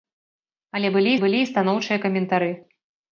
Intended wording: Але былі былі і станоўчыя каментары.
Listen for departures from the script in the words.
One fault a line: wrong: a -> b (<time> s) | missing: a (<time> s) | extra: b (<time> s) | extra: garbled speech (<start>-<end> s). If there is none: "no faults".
no faults